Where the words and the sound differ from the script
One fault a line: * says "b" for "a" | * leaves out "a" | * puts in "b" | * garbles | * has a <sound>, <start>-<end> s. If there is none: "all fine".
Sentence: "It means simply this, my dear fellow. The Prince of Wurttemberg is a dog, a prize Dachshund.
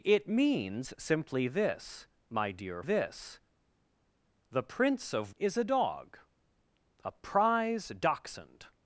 * says "this" for "fellow"
* leaves out "Wurttemberg"